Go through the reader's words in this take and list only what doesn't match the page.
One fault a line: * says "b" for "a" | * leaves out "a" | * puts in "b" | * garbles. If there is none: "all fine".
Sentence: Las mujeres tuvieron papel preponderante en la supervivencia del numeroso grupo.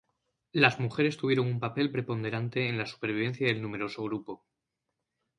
* puts in "un"